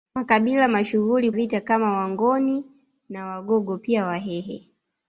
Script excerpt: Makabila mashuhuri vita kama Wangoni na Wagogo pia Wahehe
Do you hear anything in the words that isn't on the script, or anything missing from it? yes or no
no